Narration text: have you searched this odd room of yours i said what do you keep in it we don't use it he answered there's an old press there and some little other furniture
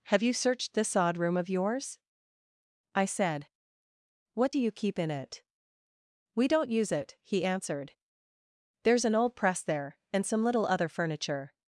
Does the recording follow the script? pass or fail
pass